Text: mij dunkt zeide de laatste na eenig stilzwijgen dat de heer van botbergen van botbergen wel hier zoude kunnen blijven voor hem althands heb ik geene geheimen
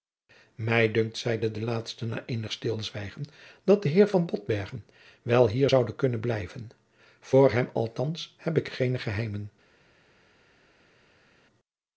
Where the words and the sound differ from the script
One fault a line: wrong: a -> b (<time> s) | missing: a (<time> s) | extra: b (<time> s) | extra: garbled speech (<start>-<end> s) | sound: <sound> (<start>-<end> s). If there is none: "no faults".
missing: van botbergen (4.9 s)